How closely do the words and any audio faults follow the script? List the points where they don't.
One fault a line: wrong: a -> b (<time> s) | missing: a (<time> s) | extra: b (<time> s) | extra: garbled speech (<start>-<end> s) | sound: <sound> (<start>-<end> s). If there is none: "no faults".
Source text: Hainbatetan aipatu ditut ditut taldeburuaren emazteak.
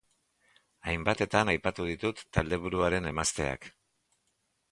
missing: ditut (2.2 s)